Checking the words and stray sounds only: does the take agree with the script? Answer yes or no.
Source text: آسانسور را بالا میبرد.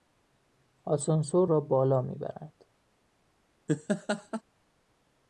no